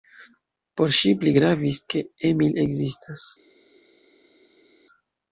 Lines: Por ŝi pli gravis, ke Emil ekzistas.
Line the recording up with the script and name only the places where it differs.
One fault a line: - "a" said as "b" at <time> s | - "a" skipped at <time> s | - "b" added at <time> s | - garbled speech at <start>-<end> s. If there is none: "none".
none